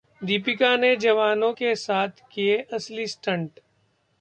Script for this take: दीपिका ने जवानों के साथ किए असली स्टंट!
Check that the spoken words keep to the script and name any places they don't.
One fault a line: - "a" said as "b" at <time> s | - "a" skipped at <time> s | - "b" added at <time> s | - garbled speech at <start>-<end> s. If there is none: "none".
none